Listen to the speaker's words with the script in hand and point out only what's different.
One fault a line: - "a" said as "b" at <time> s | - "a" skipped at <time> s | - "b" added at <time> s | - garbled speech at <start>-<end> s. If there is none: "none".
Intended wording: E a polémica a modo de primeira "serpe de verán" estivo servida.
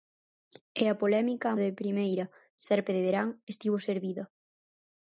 - "modo" skipped at 1.6 s